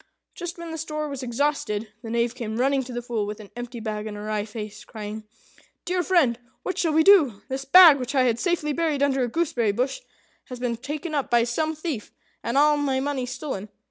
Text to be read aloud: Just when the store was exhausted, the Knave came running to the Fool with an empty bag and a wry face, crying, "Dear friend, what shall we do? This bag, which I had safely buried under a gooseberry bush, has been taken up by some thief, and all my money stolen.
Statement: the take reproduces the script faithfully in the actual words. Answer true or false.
true